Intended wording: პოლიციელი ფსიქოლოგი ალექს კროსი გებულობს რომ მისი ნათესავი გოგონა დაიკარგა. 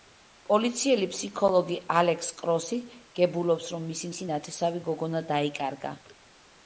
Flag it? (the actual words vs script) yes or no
yes